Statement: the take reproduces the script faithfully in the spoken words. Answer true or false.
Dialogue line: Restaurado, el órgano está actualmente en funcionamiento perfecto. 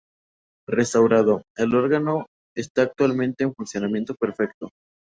true